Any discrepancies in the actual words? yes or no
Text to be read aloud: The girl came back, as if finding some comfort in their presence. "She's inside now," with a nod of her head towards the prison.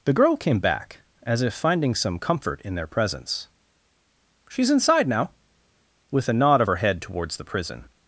no